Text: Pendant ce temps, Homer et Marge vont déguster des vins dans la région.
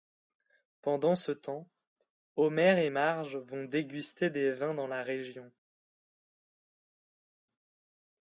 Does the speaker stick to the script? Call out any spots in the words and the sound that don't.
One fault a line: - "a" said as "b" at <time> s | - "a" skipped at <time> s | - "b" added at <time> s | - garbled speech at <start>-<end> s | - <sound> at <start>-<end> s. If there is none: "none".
none